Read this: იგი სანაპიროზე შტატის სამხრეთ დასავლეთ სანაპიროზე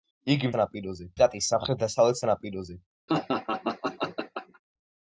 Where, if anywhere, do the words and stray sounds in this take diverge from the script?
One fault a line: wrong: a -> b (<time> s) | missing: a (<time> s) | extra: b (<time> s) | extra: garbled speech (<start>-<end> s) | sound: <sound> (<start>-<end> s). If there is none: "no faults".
sound: laugh (3.1-4.6 s)